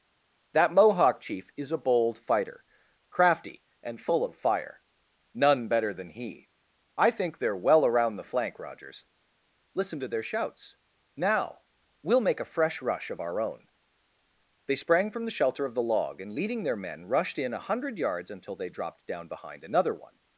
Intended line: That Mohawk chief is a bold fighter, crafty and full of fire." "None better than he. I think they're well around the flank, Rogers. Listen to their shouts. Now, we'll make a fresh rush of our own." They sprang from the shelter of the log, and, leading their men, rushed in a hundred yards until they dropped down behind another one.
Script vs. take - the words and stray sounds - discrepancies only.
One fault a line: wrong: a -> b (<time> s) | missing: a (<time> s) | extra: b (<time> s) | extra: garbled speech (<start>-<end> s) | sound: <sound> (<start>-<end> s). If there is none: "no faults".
no faults